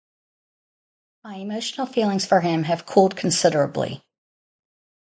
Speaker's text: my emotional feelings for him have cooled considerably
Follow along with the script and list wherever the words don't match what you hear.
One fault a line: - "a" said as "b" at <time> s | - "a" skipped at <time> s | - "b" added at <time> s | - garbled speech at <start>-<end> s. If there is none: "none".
none